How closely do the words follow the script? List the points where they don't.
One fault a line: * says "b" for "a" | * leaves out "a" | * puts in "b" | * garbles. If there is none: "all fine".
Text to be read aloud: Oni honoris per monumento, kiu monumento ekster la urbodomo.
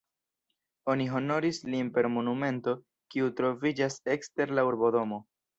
* puts in "lin"
* says "troviĝas" for "monumento"